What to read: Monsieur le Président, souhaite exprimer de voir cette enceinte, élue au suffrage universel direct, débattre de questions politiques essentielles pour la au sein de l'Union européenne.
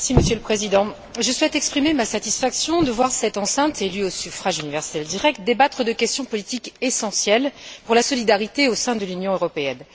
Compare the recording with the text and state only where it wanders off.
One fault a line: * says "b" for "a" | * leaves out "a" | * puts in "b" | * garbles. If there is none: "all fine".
* puts in "je"
* puts in "ma satisfaction"
* puts in "solidarité"